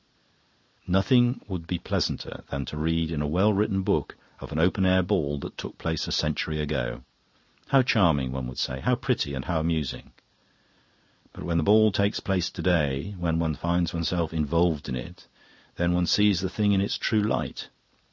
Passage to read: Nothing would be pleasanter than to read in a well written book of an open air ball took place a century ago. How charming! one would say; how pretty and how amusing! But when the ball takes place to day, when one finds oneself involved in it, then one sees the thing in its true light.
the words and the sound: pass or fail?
fail